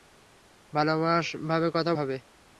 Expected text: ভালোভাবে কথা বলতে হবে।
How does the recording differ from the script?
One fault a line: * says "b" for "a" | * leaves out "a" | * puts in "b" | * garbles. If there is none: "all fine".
* leaves out "বলতে"